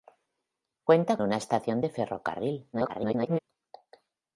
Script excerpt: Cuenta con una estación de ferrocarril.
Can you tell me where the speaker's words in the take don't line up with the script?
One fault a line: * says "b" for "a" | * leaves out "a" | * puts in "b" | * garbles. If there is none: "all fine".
* leaves out "con"
* garbles